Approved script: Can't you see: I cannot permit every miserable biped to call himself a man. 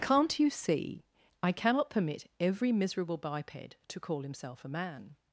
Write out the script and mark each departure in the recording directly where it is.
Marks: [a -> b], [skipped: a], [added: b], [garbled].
Can't you see: I cannot permit every miserable biped to call himself a man.